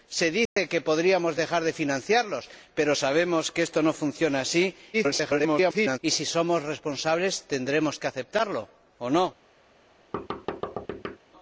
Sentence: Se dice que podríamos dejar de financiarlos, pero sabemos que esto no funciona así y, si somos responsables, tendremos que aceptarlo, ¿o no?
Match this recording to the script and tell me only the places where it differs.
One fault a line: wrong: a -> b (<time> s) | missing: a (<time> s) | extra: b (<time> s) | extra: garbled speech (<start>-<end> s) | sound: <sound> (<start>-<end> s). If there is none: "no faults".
sound: dropout (0.5-0.6 s)
extra: garbled speech (4.9-6.0 s)
sound: thud (10.1-11.2 s)